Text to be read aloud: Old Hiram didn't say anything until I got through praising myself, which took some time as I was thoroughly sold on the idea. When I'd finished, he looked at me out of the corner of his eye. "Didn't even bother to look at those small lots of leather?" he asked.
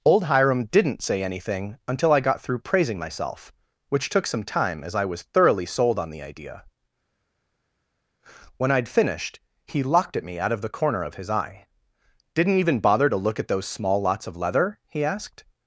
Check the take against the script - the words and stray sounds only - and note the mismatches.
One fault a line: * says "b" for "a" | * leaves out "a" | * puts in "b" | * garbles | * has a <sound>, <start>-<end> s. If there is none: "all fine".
* says "locked" for "looked"